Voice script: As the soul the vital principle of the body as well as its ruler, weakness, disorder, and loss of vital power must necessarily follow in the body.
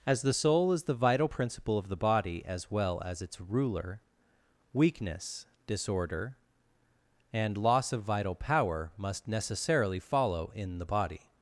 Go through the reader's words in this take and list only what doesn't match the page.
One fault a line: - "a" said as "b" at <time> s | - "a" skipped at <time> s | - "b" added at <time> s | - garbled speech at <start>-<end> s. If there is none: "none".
- "is" added at 0.7 s